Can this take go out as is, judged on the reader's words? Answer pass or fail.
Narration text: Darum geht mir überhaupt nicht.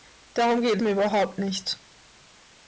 pass